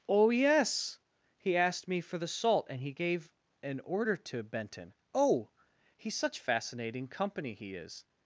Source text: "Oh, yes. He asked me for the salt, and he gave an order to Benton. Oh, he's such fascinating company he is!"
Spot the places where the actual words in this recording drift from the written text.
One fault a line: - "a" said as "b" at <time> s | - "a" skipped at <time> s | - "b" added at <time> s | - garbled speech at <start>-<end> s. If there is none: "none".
none